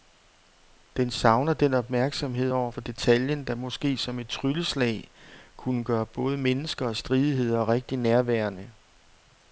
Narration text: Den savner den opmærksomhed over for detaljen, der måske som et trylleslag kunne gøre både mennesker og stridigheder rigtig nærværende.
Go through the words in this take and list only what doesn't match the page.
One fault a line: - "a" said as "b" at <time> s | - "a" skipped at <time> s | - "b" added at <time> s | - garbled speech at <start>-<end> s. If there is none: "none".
none